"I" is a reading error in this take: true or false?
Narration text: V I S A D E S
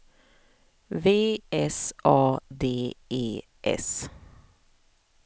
true